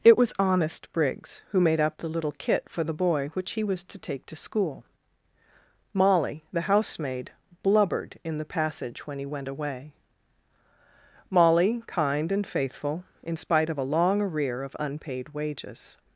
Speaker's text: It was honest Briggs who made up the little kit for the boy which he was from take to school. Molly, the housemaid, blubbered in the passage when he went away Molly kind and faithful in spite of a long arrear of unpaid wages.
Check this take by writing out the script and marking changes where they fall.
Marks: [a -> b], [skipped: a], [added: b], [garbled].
It was honest Briggs who made up the little kit for the boy which he was [from -> to] take to school. Molly, the housemaid, blubbered in the passage when he went away Molly kind and faithful in spite of a long arrear of unpaid wages.